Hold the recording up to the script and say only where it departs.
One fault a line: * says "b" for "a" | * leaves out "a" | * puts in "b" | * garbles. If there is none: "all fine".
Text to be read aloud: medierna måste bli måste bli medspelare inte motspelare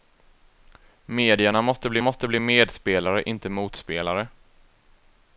all fine